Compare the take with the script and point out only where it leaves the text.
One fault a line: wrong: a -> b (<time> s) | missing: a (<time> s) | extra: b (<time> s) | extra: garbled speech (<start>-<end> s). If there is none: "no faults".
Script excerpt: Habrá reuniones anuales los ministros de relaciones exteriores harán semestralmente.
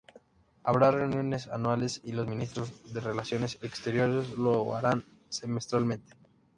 extra: y (2.0 s)
extra: lo (4.3 s)